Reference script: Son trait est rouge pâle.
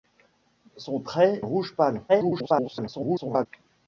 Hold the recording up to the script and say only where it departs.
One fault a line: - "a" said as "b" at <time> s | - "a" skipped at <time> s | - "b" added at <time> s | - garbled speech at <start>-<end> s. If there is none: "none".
- "est" skipped at 1.4 s
- garbled speech at 2.1-3.5 s